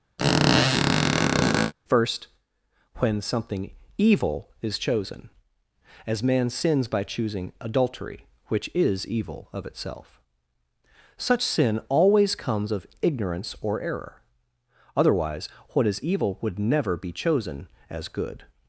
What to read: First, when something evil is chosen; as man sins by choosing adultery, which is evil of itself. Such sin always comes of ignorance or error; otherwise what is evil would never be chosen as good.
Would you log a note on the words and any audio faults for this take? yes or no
yes